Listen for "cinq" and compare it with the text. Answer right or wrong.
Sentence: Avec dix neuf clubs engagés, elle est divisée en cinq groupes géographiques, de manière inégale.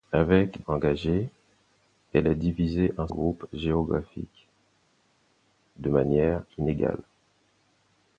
wrong